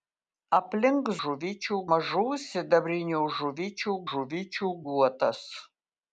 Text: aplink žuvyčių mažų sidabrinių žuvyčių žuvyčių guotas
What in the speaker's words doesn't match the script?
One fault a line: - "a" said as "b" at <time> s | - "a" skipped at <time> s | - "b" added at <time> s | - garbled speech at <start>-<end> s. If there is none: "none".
none